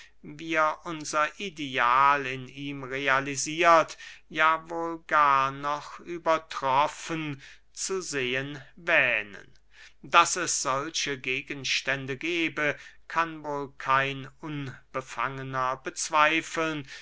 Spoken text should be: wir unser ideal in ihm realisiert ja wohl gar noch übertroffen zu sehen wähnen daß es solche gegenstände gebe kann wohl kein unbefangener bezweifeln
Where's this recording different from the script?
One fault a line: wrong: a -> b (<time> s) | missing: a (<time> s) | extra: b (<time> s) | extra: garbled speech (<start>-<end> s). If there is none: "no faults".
no faults